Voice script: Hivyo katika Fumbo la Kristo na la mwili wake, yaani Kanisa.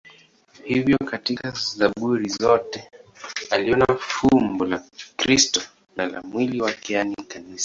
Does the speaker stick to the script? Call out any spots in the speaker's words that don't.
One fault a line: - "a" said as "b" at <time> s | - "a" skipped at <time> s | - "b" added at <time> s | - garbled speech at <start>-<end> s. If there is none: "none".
- "Zaburi zote aliona" added at 1.8 s